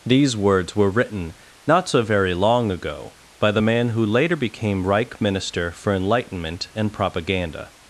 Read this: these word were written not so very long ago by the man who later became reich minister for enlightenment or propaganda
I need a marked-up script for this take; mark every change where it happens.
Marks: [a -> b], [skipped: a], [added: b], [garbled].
these [word -> words] were written not so very long ago by the man who later became reich minister for enlightenment [or -> and] propaganda